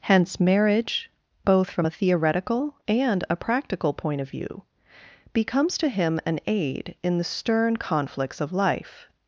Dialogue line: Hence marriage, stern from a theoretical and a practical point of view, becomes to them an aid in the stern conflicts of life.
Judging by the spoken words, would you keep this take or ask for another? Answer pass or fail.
fail